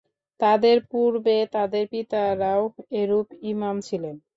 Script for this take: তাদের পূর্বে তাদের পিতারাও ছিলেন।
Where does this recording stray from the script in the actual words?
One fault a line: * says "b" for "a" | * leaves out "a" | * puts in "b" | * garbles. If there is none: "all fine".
* puts in "এরূপ ইমাম"